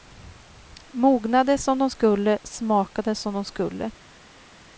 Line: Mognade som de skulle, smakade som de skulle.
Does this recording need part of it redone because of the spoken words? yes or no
no